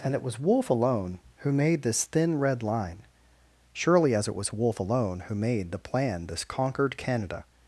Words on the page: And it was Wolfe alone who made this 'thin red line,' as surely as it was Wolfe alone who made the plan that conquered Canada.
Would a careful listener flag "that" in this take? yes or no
yes